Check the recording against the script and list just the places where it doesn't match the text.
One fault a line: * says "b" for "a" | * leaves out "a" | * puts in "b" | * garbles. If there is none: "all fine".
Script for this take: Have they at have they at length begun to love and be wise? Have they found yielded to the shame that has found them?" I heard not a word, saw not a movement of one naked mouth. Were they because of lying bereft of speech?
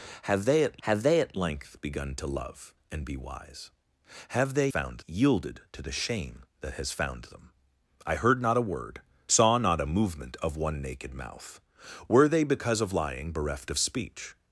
all fine